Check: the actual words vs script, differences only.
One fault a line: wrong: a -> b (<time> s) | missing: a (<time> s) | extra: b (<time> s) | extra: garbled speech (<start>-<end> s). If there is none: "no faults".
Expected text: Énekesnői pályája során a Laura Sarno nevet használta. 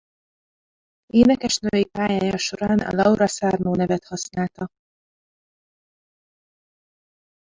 no faults